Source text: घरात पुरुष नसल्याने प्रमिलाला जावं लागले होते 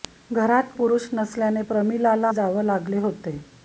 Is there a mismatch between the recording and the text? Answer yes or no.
no